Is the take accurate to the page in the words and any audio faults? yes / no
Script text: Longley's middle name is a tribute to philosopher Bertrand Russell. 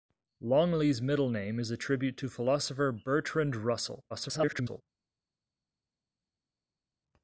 no